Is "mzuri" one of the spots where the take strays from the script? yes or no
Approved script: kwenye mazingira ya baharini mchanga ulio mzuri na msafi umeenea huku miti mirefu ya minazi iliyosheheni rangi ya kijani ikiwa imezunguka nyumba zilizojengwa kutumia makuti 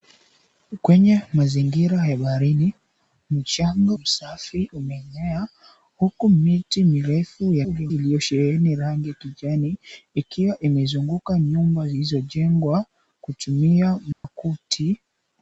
yes